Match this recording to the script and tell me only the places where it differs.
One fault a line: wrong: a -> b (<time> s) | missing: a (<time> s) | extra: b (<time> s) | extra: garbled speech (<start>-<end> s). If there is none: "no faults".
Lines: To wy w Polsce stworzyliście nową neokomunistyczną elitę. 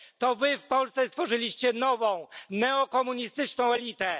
no faults